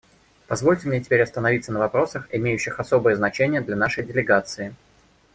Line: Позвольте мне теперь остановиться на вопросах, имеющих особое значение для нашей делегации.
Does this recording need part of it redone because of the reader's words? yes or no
no